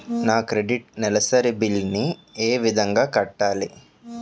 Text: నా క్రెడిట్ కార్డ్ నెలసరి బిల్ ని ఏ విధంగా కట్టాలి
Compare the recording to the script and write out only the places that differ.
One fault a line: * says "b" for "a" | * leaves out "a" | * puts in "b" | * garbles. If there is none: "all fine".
* leaves out "కార్డ్"